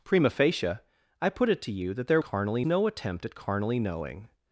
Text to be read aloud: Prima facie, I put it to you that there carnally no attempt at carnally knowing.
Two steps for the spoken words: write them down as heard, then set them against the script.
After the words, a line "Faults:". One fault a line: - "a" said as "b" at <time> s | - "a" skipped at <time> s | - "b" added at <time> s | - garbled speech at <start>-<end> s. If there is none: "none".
Prima facie, I put it to you that there carnally no attempt at carnally knowing.
Faults:
none